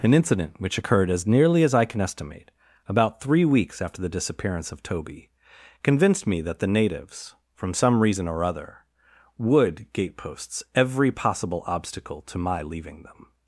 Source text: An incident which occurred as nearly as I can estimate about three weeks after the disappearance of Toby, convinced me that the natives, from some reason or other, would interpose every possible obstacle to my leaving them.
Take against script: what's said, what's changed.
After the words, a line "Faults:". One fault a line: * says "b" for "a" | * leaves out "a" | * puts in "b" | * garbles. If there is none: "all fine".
An incident which occurred as nearly as I can estimate about three weeks after the disappearance of Toby, convinced me that the natives, from some reason or other, would gateposts every possible obstacle to my leaving them.
Faults:
* says "gateposts" for "interpose"